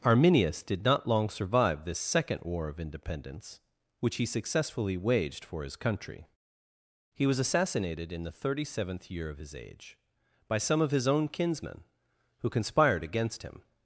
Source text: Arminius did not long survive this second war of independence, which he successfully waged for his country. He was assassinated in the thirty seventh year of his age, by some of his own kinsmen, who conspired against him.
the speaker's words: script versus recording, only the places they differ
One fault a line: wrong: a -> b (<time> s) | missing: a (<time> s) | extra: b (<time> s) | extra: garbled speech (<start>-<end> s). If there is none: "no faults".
no faults